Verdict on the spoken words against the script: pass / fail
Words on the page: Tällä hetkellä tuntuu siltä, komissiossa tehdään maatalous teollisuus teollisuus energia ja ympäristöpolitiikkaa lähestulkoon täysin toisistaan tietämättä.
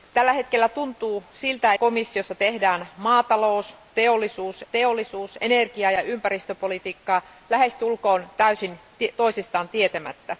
pass